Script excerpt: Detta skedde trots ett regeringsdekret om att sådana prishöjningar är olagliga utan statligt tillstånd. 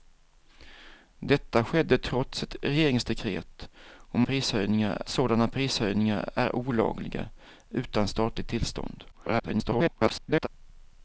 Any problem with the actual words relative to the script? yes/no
yes